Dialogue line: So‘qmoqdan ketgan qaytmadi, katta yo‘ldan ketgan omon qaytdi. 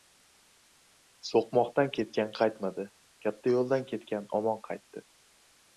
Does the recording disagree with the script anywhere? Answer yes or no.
no